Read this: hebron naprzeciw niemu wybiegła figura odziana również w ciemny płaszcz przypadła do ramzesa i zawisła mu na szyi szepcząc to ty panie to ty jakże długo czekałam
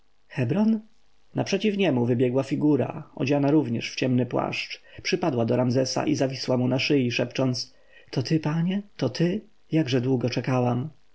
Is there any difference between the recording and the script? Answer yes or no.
no